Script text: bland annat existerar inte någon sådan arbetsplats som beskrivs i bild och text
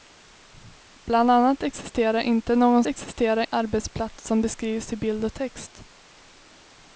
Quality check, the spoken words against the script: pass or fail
fail